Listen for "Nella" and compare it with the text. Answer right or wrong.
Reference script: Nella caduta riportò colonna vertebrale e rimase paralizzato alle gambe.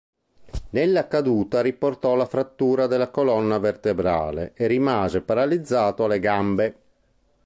right